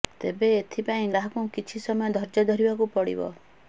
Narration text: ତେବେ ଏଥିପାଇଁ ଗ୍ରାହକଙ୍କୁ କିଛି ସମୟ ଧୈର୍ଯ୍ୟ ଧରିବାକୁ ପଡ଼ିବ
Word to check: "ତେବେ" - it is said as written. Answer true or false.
true